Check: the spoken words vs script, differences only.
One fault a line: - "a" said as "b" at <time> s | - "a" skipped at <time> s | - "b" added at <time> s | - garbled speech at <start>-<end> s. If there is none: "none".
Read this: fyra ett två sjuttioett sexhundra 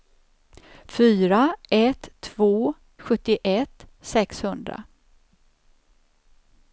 none